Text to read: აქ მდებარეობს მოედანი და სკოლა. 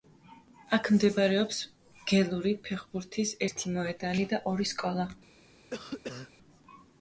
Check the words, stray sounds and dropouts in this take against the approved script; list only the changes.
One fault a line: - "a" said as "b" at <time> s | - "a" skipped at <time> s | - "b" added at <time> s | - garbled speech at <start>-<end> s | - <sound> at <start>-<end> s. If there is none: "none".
- "გელური ფეხბურთის ერთი" added at 2.1 s
- "ორი" added at 4.5 s
- cough at 5.7-6.3 s